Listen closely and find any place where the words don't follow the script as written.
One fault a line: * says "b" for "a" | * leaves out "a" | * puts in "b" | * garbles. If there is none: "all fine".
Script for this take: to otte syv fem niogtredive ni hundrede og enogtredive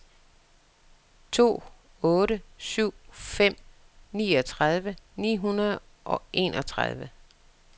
all fine